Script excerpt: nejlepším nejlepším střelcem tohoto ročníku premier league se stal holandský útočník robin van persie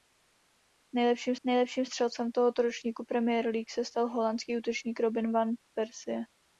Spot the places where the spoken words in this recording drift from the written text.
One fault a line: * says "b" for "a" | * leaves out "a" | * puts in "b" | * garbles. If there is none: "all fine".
all fine